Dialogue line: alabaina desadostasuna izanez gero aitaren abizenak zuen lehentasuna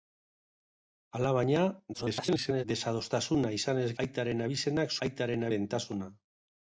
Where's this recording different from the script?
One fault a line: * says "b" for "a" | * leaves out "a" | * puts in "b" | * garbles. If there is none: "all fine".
* garbles
* leaves out "gero"
* says "aitaren" for "zuen"